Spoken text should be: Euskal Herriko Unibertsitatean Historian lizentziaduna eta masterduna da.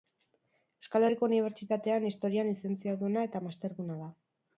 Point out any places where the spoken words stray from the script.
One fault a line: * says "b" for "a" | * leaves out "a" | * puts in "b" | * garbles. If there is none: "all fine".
all fine